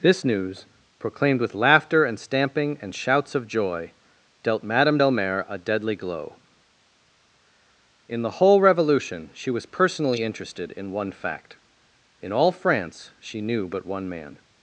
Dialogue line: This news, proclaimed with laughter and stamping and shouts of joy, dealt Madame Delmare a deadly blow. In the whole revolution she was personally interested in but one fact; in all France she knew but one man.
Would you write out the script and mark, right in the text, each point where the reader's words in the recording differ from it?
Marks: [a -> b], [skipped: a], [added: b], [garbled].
This news, proclaimed with laughter and stamping and shouts of joy, dealt Madame Delmare a deadly [blow. -> glow] In the whole revolution she was personally interested in [skipped: but] one fact; in all France she knew but one man.